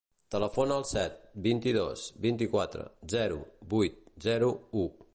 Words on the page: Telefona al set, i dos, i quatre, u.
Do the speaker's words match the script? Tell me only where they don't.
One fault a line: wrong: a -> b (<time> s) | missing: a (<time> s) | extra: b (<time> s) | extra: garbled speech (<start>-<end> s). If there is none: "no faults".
extra: vint (1.5 s)
extra: vint (2.2 s)
extra: zero vuit zero (3.1 s)